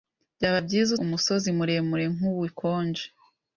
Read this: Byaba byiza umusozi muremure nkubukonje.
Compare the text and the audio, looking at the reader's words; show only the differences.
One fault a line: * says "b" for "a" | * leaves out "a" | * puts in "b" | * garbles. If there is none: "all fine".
all fine